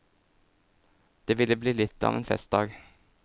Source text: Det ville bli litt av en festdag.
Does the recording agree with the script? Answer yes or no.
yes